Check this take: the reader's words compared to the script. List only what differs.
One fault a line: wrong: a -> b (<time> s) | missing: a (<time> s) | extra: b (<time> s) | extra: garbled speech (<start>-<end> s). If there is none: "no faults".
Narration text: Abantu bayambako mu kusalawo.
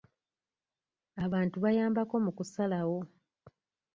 no faults